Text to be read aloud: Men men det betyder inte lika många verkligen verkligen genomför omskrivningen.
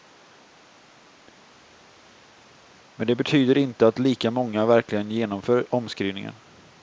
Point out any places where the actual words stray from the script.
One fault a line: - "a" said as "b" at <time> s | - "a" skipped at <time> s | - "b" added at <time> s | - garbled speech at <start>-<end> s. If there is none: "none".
- "men" skipped at 3.1 s
- "att" added at 3.9 s
- "verkligen" skipped at 5.1 s